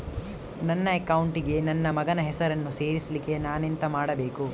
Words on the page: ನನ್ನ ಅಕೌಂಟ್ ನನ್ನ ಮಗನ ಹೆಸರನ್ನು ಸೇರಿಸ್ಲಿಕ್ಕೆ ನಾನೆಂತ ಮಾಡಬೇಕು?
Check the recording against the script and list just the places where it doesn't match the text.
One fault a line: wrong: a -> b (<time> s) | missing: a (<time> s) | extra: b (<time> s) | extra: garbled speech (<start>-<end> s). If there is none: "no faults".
extra: ಗೆ (1.4 s)